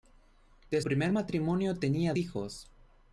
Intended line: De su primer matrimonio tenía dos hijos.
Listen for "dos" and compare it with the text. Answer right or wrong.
wrong